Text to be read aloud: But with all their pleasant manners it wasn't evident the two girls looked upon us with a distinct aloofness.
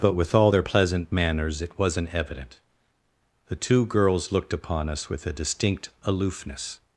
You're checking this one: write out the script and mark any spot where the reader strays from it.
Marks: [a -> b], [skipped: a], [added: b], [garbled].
But with all their pleasant manners it wasn't evident the two girls looked upon us with a distinct aloofness.